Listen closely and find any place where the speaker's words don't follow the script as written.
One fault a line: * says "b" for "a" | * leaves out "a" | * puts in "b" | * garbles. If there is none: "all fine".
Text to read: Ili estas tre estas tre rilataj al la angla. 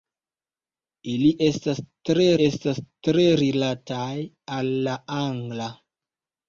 all fine